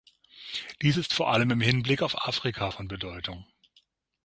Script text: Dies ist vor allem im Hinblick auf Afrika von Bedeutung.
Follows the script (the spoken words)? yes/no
yes